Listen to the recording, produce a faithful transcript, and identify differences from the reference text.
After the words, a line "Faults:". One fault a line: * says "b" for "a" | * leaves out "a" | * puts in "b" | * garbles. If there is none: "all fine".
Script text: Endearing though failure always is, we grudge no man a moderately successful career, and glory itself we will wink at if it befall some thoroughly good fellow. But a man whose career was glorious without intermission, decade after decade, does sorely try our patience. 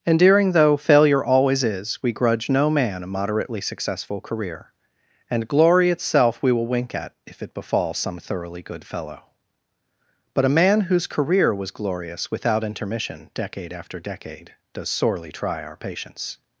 Endearing though failure always is, we grudge no man a moderately successful career, and glory itself we will wink at if it befall some thoroughly good fellow. But a man whose career was glorious without intermission, decade after decade, does sorely try our patience.
Faults:
all fine